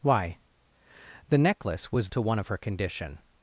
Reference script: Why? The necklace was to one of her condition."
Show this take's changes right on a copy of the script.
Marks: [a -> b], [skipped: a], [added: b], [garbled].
Why? The necklace was to one of her condition."